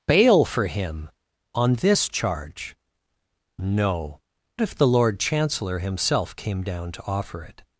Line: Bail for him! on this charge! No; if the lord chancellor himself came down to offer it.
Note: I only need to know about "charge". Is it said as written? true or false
true